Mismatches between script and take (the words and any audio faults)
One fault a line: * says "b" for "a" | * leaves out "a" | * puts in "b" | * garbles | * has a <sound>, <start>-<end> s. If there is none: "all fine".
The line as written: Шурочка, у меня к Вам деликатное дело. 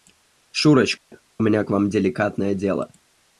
* has a dropout, 1.0-1.1 s